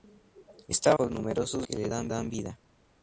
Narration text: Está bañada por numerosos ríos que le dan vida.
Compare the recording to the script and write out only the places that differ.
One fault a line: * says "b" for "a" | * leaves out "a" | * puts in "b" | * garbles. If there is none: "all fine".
* leaves out "bañada"
* leaves out "ríos"
* puts in "dan"